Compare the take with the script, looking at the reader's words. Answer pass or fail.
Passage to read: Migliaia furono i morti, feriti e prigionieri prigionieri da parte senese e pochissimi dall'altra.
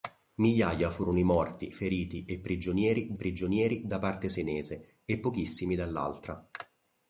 pass